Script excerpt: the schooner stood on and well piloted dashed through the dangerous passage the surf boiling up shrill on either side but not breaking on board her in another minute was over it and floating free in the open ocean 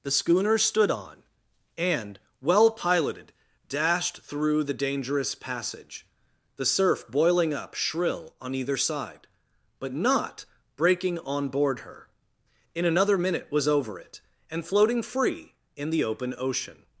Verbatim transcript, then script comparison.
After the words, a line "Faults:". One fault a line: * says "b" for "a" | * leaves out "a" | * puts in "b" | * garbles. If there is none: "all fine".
the schooner stood on and well piloted dashed through the dangerous passage the surf boiling up shrill on either side but not breaking on board her in another minute was over it and floating free in the open ocean
Faults:
all fine